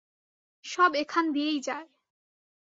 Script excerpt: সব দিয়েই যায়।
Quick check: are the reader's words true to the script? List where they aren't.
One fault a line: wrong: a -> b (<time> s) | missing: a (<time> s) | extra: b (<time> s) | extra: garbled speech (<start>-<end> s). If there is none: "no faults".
extra: এখান (0.9 s)